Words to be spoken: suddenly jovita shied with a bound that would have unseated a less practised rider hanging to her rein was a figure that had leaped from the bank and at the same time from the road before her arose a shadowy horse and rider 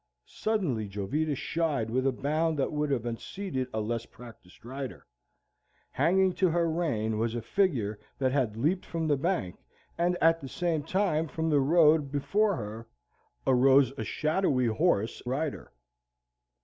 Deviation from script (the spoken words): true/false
true